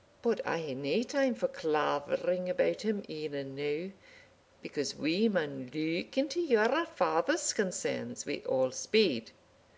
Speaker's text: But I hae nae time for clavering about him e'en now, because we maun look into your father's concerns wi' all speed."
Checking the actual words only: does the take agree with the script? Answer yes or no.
yes